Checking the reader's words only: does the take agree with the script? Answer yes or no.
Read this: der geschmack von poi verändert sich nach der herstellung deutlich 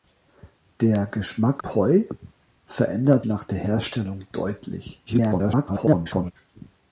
no